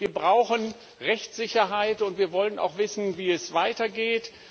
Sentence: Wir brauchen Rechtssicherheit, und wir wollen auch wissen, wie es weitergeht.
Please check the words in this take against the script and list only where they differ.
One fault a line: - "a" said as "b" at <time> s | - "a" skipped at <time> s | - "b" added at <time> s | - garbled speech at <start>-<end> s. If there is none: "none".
none